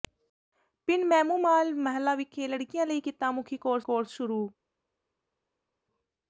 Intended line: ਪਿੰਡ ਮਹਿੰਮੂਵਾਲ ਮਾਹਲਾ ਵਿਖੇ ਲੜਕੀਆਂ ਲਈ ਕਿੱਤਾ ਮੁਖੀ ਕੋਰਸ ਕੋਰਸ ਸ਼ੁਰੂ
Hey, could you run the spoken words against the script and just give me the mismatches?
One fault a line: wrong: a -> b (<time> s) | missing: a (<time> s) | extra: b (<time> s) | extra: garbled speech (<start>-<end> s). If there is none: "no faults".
no faults